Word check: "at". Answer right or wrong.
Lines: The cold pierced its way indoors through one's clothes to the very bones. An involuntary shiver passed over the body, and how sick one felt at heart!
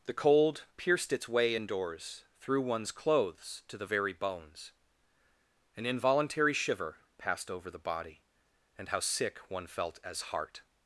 wrong